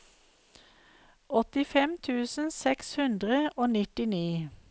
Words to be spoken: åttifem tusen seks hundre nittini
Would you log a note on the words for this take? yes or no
yes